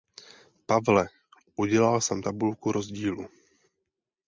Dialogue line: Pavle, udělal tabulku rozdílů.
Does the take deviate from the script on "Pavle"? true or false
false